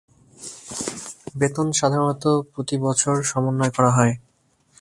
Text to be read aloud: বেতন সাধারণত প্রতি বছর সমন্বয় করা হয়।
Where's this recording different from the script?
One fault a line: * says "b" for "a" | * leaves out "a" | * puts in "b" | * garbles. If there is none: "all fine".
all fine